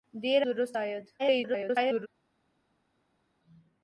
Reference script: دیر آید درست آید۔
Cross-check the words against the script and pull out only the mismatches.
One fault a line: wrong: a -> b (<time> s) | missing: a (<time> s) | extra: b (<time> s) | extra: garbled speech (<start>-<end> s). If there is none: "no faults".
missing: آید (0.4 s)
extra: garbled speech (1.2-2.1 s)